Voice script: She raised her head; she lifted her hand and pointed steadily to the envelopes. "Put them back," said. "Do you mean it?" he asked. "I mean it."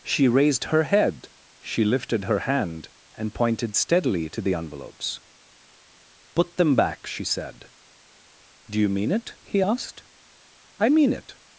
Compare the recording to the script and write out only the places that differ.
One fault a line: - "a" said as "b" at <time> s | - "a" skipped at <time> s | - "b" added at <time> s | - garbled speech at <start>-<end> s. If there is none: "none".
- "she" added at 7.0 s